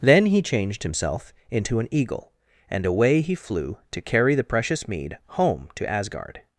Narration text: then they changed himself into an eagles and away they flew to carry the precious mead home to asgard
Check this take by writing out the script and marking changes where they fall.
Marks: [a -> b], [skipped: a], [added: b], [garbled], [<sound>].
then [they -> he] changed himself into an [eagles -> eagle] and away [they -> he] flew to carry the precious mead home to asgard